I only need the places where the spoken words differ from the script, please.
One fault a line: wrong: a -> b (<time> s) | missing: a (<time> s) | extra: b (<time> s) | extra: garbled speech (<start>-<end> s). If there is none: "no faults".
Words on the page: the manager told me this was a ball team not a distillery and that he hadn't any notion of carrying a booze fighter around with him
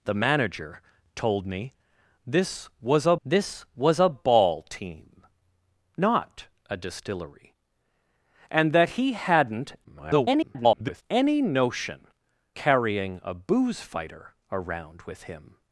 extra: this was a (3.2 s)
extra: garbled speech (9.8-11.0 s)
missing: of (12.1 s)